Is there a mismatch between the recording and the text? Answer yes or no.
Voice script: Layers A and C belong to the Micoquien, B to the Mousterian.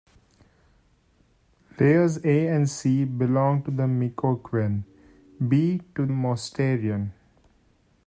yes